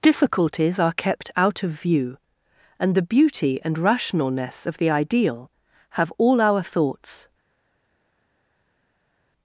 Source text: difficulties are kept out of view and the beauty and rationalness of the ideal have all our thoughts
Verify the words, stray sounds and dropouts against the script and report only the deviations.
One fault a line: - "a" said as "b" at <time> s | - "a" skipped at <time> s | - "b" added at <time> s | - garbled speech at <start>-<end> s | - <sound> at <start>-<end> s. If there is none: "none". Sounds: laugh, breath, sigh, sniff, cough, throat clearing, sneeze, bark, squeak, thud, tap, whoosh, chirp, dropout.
none